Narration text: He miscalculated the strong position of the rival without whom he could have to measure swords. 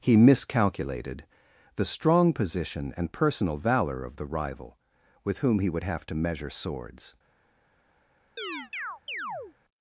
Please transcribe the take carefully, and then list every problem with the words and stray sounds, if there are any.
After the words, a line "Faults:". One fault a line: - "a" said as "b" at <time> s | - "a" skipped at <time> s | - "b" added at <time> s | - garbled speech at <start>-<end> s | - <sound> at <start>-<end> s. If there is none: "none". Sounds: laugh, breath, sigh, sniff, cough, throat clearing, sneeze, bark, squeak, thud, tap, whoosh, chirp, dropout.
He miscalculated the strong position and personal valor of the rival with whom he would have to measure swords.
Faults:
- "and personal valor" added at 3.0 s
- "without" said as "with" at 5.2 s
- "could" said as "would" at 5.7 s
- chirp at 8.4-9.6 s